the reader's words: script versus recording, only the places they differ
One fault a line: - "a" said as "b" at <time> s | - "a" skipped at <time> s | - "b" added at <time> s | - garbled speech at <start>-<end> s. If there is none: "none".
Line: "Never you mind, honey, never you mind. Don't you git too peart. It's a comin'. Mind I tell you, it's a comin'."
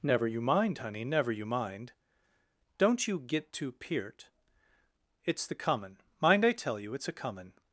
- "a" said as "the" at 5.4 s